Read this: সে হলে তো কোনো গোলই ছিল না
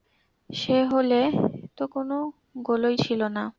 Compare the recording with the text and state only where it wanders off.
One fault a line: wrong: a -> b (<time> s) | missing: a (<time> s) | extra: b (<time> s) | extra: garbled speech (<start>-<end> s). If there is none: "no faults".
no faults